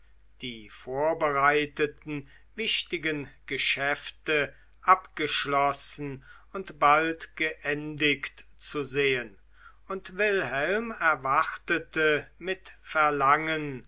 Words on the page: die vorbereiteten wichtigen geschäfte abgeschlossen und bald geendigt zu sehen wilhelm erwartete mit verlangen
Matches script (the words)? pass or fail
fail